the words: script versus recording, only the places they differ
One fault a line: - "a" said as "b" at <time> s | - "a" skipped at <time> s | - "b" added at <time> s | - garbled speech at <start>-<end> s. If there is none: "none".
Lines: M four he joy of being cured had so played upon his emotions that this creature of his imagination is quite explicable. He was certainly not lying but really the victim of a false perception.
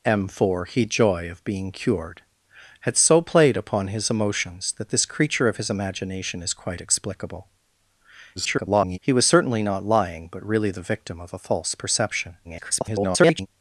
- garbled speech at 8.4-9.0 s
- garbled speech at 12.4-13.5 s